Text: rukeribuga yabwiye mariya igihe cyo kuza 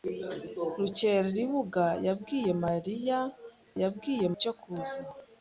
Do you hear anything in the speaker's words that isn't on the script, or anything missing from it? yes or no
yes